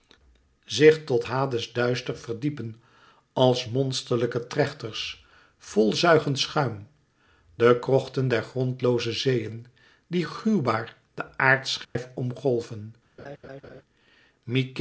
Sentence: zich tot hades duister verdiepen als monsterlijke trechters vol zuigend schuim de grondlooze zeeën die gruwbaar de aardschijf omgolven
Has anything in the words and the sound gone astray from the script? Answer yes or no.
yes